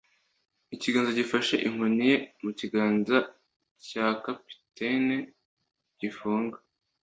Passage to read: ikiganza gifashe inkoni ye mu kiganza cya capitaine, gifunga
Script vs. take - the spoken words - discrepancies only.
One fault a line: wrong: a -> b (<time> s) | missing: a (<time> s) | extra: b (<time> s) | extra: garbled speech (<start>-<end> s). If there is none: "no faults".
no faults